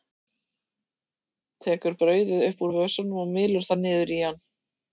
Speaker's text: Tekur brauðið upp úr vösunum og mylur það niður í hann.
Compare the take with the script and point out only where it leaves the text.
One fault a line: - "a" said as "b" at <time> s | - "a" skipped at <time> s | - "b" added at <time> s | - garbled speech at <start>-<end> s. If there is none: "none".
none